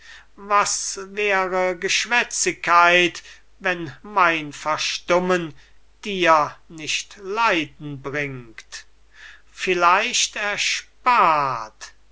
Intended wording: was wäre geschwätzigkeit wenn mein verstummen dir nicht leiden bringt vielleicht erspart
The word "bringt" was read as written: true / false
true